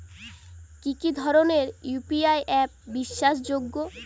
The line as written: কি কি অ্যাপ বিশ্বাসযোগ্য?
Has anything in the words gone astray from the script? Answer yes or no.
yes